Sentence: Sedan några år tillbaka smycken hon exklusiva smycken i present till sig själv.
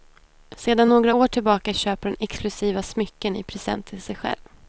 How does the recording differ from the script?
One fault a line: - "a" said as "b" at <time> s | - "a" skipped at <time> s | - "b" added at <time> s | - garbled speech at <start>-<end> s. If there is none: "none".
- "smycken" said as "köper" at 1.7 s